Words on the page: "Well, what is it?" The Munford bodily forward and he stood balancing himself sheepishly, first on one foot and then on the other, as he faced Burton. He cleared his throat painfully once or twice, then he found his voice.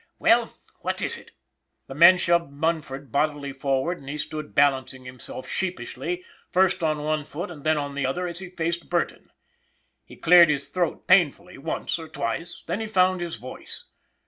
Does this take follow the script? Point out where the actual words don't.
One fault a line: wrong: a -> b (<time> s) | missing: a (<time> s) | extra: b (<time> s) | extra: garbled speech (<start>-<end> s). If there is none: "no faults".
extra: men shoved (1.9 s)